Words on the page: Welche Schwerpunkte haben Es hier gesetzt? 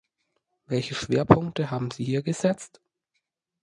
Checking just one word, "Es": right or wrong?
wrong